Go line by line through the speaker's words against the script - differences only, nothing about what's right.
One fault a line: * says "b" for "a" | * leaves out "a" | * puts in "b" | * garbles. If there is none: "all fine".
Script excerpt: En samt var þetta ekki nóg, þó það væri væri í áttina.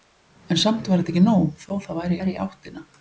all fine